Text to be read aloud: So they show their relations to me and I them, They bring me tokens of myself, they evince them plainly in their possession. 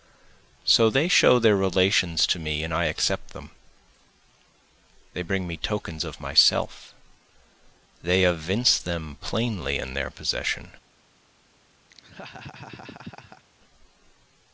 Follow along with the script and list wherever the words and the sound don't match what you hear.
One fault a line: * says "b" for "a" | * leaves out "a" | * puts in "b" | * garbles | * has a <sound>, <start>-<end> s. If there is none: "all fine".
* puts in "accept"
* has a laugh, 11.9-13.4 s